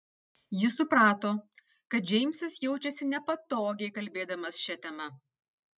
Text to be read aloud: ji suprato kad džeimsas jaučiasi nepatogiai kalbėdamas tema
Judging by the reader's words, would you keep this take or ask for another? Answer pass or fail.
fail